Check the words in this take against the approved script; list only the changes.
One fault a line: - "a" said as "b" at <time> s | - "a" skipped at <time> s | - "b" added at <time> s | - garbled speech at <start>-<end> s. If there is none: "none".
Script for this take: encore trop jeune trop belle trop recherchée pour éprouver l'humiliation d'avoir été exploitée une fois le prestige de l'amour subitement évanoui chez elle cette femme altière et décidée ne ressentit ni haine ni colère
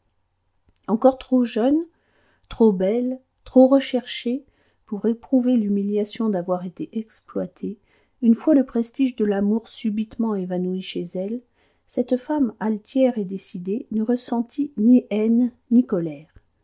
none